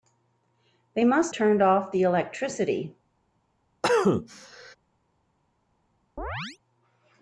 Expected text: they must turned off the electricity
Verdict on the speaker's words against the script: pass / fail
pass